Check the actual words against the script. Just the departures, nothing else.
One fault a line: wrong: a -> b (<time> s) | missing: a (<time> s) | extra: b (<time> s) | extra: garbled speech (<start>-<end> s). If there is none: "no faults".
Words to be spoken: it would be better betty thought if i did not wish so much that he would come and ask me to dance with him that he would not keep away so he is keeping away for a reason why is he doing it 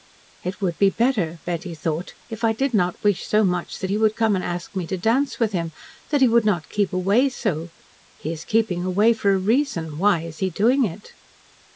no faults